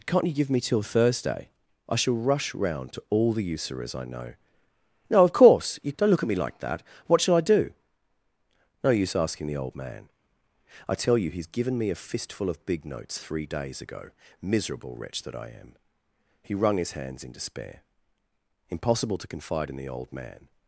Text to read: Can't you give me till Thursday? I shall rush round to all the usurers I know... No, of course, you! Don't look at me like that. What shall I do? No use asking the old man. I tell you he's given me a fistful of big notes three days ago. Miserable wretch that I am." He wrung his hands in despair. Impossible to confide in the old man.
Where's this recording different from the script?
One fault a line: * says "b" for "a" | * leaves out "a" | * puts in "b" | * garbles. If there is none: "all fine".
all fine